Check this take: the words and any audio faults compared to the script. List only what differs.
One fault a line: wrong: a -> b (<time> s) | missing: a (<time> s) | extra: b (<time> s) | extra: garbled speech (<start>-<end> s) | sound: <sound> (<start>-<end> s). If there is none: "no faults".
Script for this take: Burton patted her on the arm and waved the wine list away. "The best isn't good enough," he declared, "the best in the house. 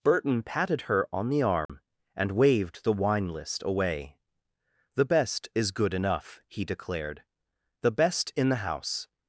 sound: dropout (1.7-1.7 s)
wrong: isn't -> is (5.5 s)